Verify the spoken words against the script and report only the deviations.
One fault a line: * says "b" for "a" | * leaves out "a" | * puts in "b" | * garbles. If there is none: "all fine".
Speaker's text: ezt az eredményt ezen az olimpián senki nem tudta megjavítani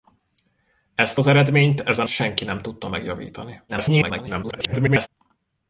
* leaves out "az olimpián"
* garbles